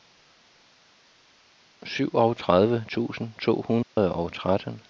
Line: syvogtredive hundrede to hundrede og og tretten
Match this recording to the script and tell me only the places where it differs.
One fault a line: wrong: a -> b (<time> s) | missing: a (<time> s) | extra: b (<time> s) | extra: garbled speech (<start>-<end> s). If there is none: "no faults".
wrong: hundrede -> tusind (2.9 s)
missing: og (4.3 s)